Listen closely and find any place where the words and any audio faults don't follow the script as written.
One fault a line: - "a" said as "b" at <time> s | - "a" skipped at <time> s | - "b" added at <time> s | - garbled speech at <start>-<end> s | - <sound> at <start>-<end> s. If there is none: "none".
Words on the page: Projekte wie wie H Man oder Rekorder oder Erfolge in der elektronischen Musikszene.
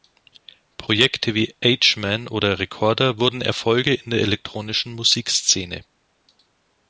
- "wie" skipped at 1.5 s
- "oder" said as "wurden" at 3.2 s